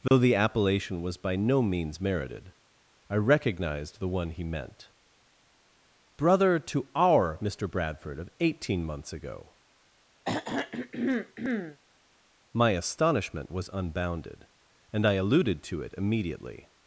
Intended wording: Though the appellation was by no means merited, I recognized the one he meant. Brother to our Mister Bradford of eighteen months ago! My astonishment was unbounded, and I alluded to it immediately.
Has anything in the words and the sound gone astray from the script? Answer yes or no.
yes